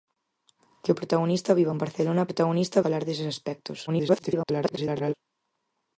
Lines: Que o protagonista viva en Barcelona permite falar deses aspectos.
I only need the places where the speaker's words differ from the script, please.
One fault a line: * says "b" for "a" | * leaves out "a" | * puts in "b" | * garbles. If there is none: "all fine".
* says "protagonista" for "permite"
* garbles